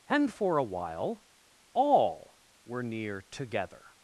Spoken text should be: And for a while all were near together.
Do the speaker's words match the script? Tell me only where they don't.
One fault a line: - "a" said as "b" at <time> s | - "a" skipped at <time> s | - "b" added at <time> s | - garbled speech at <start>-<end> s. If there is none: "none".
none